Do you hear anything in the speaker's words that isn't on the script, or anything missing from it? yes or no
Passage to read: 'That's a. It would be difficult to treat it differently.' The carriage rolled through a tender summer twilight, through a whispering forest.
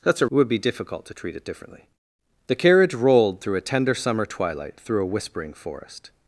no